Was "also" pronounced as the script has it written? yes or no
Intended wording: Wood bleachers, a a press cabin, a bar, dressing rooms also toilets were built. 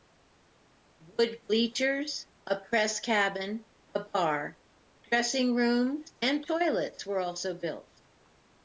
no